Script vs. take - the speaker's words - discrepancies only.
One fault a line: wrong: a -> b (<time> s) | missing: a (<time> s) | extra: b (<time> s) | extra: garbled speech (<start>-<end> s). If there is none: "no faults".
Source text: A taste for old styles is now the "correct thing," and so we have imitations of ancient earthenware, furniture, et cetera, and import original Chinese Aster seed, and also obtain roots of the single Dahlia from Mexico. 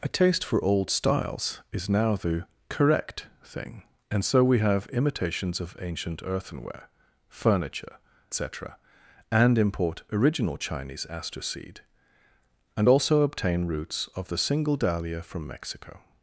missing: et (8.0 s)